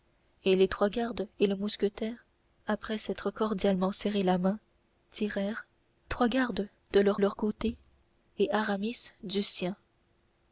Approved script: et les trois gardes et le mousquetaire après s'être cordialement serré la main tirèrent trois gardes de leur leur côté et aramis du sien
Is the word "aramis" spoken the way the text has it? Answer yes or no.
yes